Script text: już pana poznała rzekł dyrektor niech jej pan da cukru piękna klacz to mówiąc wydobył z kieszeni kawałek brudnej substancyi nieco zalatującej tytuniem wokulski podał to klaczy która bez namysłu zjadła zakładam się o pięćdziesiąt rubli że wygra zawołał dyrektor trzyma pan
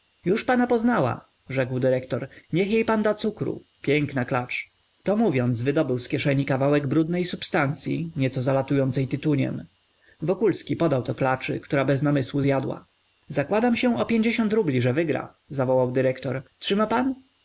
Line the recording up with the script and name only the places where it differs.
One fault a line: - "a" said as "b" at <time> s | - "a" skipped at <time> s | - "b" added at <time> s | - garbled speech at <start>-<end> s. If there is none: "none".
none